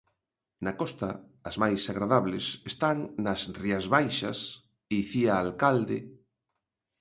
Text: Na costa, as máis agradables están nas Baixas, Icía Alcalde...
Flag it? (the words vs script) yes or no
yes